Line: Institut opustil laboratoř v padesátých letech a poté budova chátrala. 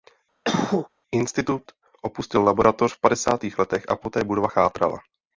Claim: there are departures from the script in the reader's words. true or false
false